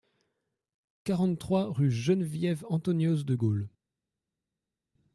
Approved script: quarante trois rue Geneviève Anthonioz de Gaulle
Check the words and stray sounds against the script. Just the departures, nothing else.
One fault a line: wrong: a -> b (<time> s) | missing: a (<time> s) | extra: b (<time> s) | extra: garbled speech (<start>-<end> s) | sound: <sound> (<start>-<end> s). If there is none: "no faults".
no faults